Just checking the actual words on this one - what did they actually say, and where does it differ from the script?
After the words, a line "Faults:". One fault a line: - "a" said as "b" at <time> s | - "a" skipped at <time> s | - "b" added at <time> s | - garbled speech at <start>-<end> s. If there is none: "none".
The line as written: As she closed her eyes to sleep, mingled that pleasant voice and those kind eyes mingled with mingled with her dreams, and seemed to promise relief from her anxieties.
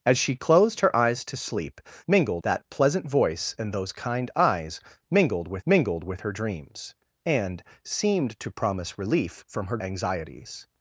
As she closed her eyes to sleep, mingled that pleasant voice and those kind eyes mingled with mingled with her dreams, and seemed to promise relief from her anxieties.
Faults:
none